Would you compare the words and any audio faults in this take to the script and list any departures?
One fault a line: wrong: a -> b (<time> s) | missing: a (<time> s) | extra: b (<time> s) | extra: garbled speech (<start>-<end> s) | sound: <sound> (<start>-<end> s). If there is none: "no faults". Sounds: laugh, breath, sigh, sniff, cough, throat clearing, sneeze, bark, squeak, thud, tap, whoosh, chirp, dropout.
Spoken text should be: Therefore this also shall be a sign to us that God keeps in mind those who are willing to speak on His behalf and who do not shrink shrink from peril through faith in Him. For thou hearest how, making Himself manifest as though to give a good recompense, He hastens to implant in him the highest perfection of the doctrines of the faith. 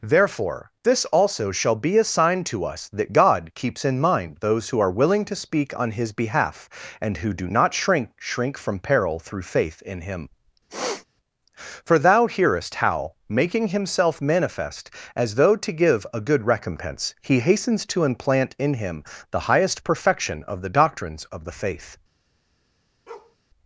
sound: sniff (10.7-11.1 s)
sound: bark (23.1-23.4 s)